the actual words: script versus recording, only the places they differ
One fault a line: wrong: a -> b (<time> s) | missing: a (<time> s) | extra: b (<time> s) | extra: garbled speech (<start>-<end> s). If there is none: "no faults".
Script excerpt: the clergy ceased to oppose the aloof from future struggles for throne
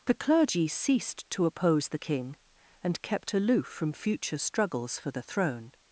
extra: king and kept (2.0 s)
extra: the (5.1 s)